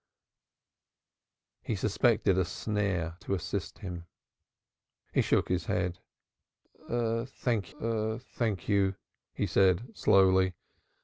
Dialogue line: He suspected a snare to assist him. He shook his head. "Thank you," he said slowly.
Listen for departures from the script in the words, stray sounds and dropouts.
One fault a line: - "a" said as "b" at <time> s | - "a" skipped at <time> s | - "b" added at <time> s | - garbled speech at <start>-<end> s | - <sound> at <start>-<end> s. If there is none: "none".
- "thank" added at 7.8 s